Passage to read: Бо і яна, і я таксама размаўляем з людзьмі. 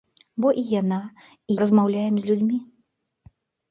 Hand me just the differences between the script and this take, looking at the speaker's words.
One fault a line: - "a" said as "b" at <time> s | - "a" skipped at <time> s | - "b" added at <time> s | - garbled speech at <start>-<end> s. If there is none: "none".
- "я таксама" skipped at 1.6 s